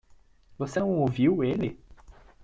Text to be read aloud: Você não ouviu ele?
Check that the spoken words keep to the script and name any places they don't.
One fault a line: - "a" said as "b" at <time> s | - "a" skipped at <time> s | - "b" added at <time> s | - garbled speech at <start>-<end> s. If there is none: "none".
none